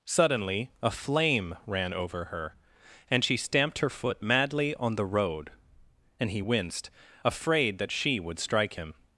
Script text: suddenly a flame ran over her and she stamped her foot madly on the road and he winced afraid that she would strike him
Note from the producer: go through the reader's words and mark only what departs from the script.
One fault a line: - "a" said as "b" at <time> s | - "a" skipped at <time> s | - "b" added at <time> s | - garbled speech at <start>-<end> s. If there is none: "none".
none